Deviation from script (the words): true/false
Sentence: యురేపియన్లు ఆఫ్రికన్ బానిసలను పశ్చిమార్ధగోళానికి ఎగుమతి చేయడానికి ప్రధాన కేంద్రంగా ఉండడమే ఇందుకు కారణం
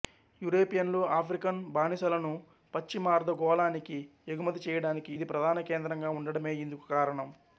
true